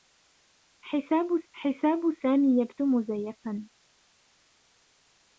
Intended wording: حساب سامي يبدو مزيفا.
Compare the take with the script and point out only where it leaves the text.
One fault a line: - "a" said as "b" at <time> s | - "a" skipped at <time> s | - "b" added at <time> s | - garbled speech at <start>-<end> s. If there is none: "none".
- "حساب" added at 1.5 s